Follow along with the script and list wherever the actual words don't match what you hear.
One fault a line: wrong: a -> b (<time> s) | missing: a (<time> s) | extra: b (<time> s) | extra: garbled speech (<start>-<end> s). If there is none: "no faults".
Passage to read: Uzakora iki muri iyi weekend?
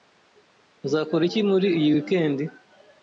no faults